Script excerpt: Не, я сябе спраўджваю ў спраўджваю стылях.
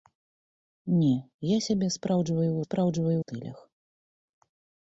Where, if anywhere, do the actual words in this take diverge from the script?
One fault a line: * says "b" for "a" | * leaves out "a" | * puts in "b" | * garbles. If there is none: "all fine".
all fine